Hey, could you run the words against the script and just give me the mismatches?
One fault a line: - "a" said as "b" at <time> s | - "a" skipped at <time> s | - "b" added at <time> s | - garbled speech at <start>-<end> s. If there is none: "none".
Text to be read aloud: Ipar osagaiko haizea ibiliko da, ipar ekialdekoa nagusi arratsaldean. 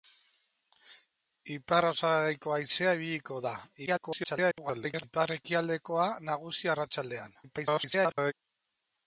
- garbled speech at 3.9-5.0 s
- garbled speech at 7.4-8.3 s